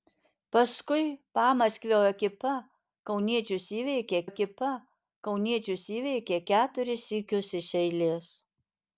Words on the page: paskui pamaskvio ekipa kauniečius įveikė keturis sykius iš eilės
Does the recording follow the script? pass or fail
fail